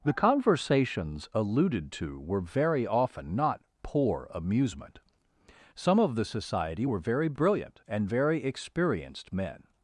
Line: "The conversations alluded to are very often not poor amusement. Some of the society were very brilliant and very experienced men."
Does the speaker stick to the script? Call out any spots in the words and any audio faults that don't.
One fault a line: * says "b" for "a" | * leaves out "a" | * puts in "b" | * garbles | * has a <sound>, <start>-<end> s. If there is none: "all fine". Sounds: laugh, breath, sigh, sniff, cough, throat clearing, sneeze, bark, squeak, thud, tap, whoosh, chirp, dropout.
* says "were" for "are"